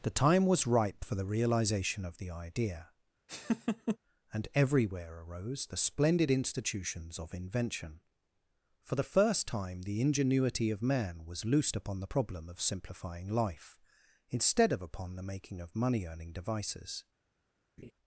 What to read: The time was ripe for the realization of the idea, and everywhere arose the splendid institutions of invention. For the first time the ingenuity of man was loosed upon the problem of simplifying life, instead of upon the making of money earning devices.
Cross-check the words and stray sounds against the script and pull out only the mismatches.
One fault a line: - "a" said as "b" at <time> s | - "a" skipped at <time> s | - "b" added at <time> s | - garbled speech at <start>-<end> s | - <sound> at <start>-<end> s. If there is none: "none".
- laugh at 3.3-4.0 s
- laugh at 17.8-17.9 s